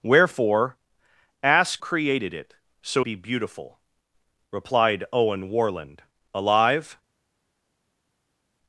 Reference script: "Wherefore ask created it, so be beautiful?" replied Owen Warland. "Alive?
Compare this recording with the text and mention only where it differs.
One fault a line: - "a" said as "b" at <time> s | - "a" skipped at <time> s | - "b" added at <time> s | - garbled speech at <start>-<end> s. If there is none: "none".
none